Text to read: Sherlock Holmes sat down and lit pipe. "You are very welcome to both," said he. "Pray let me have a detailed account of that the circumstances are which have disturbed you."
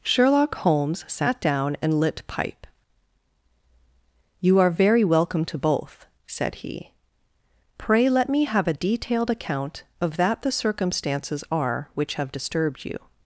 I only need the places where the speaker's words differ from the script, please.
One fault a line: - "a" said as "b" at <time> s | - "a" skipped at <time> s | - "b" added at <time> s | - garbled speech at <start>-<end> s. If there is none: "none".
none